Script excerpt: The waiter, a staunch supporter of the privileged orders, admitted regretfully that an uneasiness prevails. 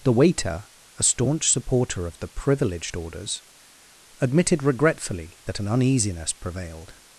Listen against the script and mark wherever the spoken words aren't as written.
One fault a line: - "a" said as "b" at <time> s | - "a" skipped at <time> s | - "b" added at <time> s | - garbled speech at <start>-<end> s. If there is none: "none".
- "prevails" said as "prevailed" at 6.3 s